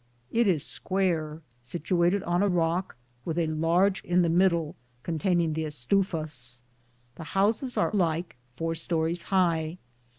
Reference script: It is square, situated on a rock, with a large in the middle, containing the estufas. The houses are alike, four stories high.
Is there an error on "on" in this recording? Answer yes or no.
no